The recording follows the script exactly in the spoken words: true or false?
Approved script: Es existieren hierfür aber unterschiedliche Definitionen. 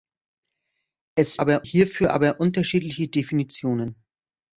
false